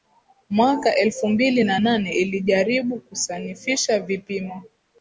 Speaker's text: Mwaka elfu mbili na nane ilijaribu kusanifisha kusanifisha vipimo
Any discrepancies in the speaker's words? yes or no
yes